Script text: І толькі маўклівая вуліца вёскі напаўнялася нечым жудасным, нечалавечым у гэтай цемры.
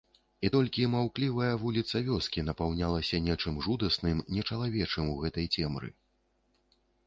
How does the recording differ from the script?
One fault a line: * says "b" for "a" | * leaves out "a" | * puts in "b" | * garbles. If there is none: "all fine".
all fine